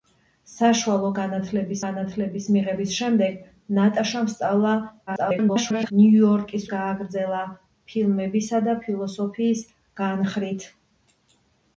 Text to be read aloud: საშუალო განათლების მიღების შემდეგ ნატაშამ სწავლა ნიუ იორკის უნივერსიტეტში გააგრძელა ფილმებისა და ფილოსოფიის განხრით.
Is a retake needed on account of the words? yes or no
yes